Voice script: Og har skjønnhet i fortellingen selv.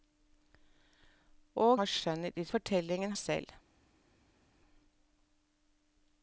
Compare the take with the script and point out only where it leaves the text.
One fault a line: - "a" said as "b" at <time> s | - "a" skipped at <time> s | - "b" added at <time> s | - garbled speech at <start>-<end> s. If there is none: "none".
none